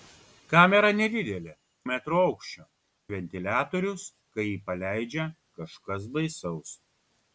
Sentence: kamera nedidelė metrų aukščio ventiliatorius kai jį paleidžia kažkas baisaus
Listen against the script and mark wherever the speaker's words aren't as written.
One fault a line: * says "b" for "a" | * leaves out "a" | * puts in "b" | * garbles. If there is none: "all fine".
all fine